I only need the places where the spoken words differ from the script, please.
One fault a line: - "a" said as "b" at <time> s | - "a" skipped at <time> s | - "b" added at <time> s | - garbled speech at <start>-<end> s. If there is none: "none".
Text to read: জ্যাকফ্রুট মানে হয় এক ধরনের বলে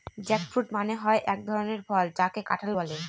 - "ফল যাকে কাঁঠাল" added at 1.9 s